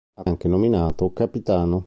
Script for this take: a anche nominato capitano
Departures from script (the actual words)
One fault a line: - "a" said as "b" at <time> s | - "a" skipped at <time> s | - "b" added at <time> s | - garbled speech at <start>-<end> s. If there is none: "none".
none